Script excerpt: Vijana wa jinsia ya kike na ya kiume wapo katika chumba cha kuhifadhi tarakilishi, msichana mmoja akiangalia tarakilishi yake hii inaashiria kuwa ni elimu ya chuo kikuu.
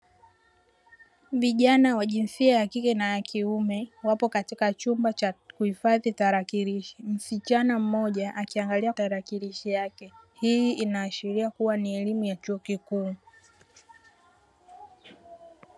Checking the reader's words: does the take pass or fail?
pass